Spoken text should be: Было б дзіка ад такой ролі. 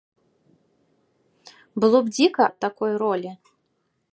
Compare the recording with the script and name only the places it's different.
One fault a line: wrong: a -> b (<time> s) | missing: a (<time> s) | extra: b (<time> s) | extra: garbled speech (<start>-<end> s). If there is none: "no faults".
no faults